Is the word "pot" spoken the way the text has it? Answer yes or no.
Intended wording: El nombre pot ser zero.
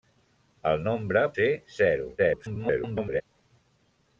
no